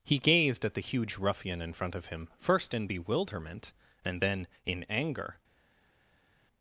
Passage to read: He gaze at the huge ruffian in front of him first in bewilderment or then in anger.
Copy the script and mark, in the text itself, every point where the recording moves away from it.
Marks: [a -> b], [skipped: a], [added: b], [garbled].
He [gaze -> gazed] at the huge ruffian in front of him first in bewilderment [or -> and] then in anger.